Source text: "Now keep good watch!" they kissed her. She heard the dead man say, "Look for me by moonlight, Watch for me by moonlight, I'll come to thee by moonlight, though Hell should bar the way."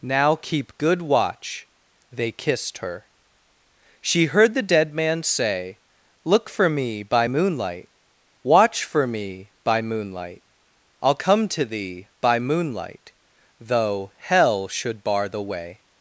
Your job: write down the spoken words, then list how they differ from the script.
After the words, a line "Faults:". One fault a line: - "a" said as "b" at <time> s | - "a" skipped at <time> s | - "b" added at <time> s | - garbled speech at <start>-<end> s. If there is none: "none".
"Now keep good watch!" they kissed her. She heard the dead man say, "Look for me by moonlight, Watch for me by moonlight, I'll come to thee by moonlight, though Hell should bar the way."
Faults:
none